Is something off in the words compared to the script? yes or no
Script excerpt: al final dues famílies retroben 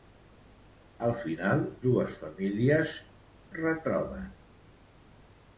no